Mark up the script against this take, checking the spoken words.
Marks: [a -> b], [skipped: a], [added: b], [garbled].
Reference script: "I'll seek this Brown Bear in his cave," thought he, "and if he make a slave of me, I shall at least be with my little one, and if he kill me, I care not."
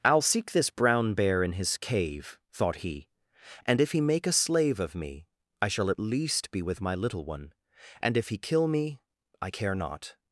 "I'll seek this Brown Bear in his cave," thought he, "and if he make a slave of me, I shall at least be with my little one, and if he kill me, I care not."